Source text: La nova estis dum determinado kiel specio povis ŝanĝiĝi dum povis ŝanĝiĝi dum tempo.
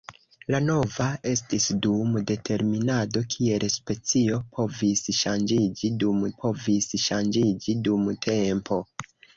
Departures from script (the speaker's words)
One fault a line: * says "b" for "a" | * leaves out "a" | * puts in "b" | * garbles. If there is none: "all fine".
all fine